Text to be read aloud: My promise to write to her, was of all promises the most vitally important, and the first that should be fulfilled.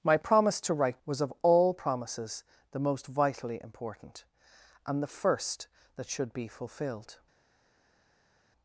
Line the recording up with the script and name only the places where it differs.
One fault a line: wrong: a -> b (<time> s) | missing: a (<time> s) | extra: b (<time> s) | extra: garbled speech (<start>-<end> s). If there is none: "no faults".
missing: to her (1.0 s)